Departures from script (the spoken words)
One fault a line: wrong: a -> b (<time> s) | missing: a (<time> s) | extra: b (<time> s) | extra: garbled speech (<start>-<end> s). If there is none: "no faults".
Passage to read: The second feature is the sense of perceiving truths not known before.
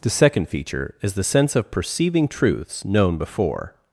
missing: not (2.8 s)